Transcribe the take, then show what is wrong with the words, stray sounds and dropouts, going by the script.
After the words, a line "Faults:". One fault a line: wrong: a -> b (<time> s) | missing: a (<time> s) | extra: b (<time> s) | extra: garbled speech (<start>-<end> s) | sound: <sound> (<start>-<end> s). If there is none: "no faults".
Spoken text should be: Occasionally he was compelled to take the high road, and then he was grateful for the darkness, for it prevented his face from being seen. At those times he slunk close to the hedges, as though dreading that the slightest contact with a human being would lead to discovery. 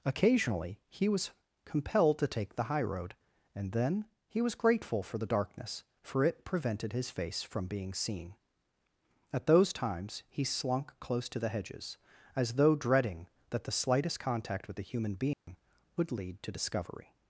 Occasionally he was compelled to take the high road, and then he was grateful for the darkness, for it prevented his face from being seen. At those times he slunk close to the hedges, as though dreading that the slightest contact with a human being would lead to discovery.
Faults:
sound: dropout (15.3-15.5 s)